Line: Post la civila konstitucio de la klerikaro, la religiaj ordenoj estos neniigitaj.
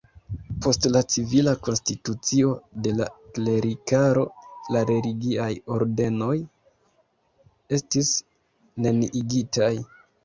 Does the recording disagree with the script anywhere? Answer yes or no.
yes